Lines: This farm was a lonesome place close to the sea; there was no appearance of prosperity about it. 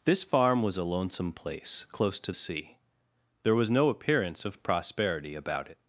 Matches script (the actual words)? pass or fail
fail